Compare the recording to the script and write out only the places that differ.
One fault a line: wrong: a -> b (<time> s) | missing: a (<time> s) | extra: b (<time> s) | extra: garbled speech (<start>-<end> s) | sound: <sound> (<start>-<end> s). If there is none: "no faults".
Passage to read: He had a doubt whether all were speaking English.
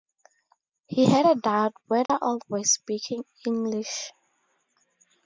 sound: dropout (2.1-2.1 s)